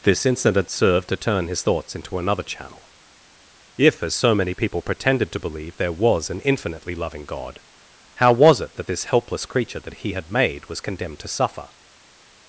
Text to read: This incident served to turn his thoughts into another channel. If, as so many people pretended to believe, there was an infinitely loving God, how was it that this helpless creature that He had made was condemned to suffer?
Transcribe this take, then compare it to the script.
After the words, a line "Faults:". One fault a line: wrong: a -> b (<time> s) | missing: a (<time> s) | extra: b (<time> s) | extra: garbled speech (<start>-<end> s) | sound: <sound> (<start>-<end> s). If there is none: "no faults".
This incident served to turn his thoughts into another channel. If, as so many people pretended to believe, there was an infinitely loving God, how was it that this helpless creature that He had made was condemned to suffer?
Faults:
no faults